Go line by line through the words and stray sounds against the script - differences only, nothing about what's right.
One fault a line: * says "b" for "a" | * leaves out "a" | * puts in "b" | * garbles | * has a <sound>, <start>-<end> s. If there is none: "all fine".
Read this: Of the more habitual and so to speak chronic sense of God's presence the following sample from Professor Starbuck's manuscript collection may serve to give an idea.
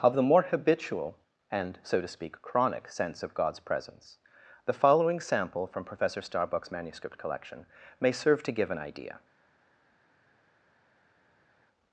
all fine